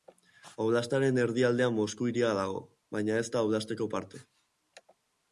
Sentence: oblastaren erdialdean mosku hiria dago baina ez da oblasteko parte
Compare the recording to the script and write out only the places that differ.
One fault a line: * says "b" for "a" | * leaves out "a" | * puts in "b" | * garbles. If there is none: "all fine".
all fine